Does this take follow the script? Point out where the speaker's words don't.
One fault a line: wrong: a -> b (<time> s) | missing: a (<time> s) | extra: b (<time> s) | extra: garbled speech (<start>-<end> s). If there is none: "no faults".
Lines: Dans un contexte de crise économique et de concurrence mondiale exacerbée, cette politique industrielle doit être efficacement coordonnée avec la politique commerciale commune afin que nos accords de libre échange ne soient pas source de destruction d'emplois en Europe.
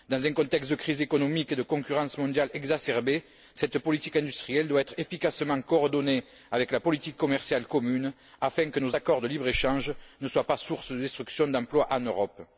no faults